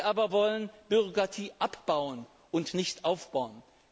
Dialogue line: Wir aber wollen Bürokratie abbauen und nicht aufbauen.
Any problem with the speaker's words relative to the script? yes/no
no